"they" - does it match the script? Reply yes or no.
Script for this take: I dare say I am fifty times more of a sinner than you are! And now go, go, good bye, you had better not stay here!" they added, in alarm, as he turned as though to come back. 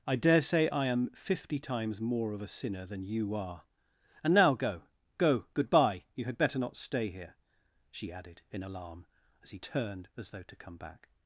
no